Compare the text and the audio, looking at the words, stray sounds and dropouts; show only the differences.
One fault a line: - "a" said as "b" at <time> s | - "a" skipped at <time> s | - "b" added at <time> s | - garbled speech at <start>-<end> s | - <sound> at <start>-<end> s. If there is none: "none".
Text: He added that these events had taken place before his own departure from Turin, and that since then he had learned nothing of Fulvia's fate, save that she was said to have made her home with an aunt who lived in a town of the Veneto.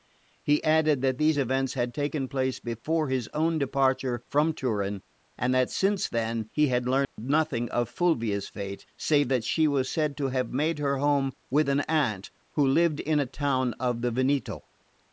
- dropout at 7.0-7.2 s